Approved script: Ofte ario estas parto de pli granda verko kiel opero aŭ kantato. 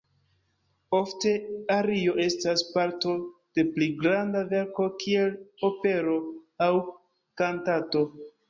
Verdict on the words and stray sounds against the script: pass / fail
pass